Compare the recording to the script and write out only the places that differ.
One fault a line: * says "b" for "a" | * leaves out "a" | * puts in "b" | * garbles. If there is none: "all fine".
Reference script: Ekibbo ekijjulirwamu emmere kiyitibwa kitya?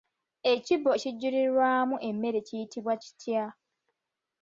all fine